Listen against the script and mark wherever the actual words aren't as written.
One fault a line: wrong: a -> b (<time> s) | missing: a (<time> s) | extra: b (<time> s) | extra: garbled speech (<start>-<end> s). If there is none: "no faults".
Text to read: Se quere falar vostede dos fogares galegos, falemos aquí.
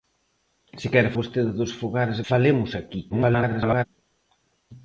missing: falar (1.1 s)
missing: galegos (2.2 s)
extra: garbled speech (3.1-3.9 s)